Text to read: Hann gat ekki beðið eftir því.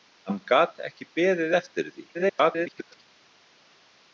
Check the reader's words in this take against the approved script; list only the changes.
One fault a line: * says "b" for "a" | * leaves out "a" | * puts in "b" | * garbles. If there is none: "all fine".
* garbles